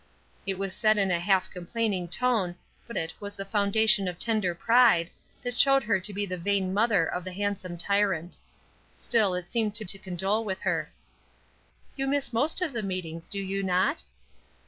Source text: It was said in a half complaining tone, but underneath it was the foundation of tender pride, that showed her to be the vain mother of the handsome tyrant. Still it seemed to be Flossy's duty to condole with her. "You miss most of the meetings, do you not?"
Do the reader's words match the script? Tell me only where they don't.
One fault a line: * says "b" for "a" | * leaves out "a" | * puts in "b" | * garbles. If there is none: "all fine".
* leaves out "underneath"
* leaves out "be Flossy's duty"